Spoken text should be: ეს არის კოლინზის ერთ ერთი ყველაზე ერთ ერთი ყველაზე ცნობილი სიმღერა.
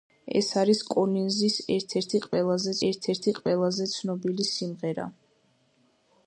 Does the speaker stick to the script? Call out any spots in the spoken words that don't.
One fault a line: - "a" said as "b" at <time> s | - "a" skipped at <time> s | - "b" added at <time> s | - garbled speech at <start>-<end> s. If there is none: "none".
none